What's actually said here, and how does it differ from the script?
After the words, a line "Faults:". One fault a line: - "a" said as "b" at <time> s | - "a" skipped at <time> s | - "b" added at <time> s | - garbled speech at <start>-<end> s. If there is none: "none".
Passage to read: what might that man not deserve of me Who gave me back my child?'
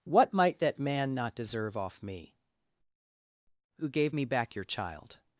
what might that man not deserve off me Who gave me back your child?'
Faults:
- "of" said as "off" at 1.8 s
- "my" said as "your" at 4.6 s